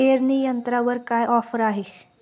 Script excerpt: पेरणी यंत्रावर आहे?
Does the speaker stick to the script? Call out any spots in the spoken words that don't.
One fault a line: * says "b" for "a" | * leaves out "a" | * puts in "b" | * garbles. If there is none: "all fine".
* puts in "काय ऑफर"